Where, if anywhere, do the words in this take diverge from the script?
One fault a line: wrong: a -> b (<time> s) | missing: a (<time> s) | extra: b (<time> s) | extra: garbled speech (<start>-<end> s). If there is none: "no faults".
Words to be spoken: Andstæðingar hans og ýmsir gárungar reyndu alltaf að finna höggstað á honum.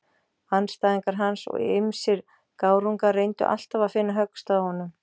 no faults